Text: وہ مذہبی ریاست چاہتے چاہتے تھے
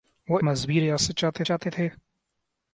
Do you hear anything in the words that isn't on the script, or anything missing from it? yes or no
no